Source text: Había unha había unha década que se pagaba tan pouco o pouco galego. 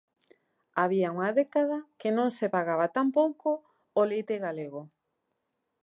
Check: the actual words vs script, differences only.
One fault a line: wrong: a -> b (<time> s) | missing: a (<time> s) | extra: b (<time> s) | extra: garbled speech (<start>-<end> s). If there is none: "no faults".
missing: había unha (1.3 s)
extra: non (2.2 s)
wrong: pouco -> leite (4.1 s)